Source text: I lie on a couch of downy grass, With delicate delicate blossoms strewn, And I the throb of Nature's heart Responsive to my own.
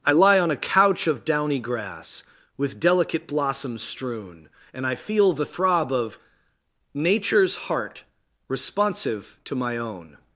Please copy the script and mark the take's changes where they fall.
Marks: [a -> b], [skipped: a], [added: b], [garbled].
I lie on a couch of downy grass, With delicate [skipped: delicate] blossoms strewn, And I [added: feel] the throb of Nature's heart Responsive to my own.